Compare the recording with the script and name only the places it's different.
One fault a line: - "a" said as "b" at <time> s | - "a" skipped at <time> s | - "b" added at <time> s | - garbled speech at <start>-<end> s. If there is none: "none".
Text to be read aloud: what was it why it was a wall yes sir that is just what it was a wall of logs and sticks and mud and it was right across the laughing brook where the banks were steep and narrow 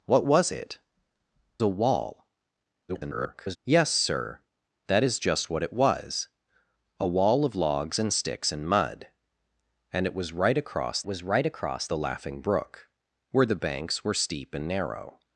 - "why it was" skipped at 0.8 s
- garbled speech at 2.9-3.6 s
- "was right across" added at 11.0 s